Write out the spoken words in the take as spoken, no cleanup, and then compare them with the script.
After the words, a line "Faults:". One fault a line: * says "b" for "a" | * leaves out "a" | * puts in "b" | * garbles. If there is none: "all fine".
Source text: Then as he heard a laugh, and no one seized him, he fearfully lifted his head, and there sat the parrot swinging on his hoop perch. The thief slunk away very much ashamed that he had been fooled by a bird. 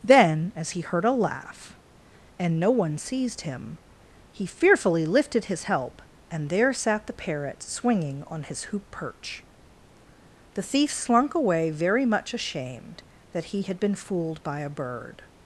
Then as he heard a laugh, and no one seized him, he fearfully lifted his help, and there sat the parrot swinging on his hoop perch. The thief slunk away very much ashamed that he had been fooled by a bird.
Faults:
* says "help" for "head"